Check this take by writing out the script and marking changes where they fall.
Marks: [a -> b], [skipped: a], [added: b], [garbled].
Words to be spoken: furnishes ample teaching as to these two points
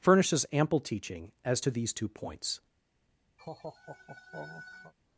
furnishes ample teaching as to these two points